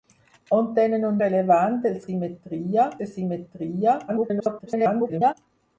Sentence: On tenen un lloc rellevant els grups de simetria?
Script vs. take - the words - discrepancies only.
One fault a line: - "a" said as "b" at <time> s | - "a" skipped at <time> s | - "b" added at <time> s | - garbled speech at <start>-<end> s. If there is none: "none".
- "lloc" skipped at 1.2 s
- "grups" said as "simetria" at 2.1 s
- garbled speech at 4.1-5.3 s